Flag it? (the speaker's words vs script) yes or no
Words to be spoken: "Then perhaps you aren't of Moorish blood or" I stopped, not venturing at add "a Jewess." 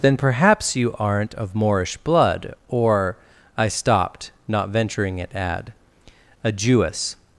no